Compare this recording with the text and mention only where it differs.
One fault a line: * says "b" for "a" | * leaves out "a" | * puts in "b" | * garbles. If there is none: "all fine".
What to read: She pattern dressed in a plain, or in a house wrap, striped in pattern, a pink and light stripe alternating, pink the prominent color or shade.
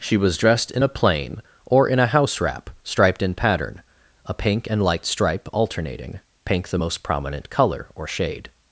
* says "was" for "pattern"
* puts in "most"